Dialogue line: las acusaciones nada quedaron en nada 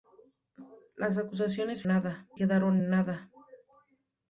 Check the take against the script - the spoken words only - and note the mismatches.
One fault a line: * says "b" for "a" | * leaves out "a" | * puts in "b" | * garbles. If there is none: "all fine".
all fine